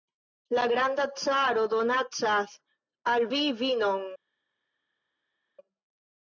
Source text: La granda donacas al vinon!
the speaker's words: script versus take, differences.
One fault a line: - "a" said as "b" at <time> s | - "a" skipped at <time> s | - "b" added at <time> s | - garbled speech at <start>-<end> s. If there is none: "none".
- "caro" added at 1.2 s
- "vi" added at 3.3 s